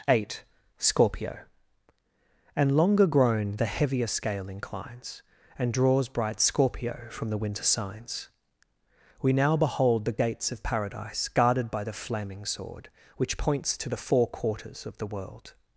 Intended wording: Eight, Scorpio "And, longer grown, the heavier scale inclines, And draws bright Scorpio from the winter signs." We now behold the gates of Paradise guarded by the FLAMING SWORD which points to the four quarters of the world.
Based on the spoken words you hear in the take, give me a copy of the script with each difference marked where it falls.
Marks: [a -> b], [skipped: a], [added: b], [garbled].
Eight, Scorpio "And, longer grown, the heavier scale inclines, And draws bright Scorpio from the winter signs." We now behold the gates of Paradise guarded by the FLAMING SWORD which points to the four quarters of the world.